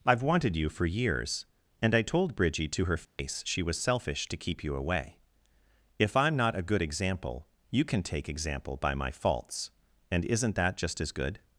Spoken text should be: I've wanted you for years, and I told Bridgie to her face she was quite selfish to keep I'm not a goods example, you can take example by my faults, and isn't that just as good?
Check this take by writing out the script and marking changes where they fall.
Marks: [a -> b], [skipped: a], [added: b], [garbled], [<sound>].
I've wanted you for years, and I told Bridgie to her face [dropout] she was [skipped: quite] selfish to keep [added: you away If] I'm not a [goods -> good] example, you can take example by my faults, and isn't that just as good?